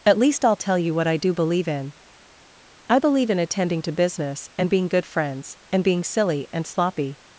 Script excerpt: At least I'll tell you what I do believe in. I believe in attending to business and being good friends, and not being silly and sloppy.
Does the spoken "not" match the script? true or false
false